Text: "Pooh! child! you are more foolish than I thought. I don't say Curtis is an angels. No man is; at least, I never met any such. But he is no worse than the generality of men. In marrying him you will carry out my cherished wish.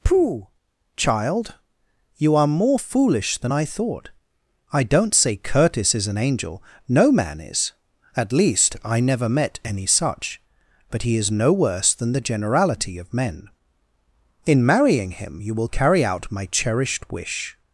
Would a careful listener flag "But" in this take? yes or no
no